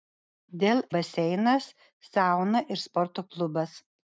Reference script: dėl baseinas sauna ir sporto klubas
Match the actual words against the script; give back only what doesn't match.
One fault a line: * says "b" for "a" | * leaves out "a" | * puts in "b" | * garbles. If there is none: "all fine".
all fine